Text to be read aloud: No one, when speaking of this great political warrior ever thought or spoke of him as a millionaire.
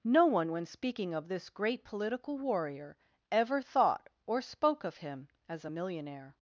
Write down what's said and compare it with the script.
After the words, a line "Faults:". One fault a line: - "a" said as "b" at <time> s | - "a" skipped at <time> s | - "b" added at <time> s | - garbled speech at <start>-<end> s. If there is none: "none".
No one, when speaking of this great political warrior ever thought or spoke of him as a millionaire.
Faults:
none